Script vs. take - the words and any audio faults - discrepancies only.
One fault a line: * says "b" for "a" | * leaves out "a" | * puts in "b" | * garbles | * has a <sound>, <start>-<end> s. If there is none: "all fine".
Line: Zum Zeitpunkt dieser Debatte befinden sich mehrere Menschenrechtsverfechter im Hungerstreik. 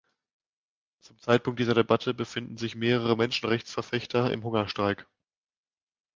all fine